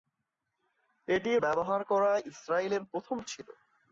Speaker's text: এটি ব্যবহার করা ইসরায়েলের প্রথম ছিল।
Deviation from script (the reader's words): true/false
false